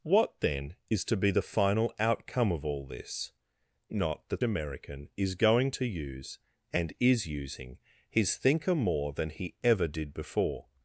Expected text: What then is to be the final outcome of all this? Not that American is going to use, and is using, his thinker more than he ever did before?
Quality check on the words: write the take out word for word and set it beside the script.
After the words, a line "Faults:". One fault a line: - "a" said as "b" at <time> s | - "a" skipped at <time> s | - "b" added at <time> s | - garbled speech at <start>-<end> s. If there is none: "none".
What then is to be the final outcome of all this? Not that American is going to use, and is using, his thinker more than he ever did before?
Faults:
none